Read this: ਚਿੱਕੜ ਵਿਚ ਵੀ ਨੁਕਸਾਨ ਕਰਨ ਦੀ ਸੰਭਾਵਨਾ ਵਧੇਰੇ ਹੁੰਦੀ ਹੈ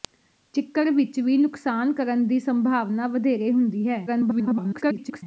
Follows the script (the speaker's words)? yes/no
no